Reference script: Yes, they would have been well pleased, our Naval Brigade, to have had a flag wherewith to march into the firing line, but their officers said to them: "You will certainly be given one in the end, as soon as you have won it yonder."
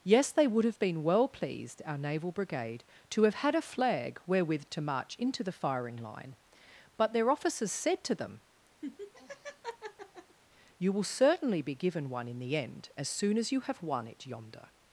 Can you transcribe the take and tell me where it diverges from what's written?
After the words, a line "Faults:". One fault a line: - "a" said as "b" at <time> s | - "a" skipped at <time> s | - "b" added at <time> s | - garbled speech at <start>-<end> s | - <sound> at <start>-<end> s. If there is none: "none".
Yes, they would have been well pleased, our Naval Brigade, to have had a flag wherewith to march into the firing line, but their officers said to them: "You will certainly be given one in the end, as soon as you have won it yonder."
Faults:
- laugh at 8.8-10.4 s